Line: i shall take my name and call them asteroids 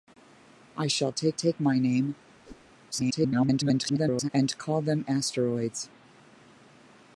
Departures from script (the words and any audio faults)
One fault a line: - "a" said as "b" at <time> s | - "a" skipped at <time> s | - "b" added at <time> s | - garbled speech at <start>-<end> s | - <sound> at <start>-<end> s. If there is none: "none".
- "take" added at 1.3 s
- whoosh at 2.4-2.7 s
- garbled speech at 2.9-4.3 s